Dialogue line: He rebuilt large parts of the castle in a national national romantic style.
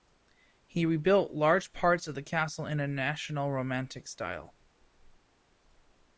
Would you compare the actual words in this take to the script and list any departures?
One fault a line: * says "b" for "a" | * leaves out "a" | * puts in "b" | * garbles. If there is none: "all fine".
* leaves out "national"